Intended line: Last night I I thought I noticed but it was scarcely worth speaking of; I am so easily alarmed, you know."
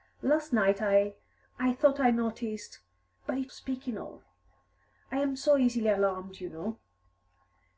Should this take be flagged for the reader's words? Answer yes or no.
yes